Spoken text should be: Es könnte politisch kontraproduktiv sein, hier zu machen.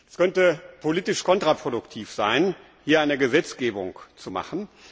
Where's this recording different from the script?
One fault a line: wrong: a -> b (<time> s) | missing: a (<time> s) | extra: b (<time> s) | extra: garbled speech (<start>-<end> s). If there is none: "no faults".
extra: eine Gesetzgebung (3.0 s)